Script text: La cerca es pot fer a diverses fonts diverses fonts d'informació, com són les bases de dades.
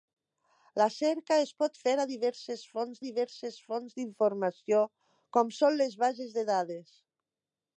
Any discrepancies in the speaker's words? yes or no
no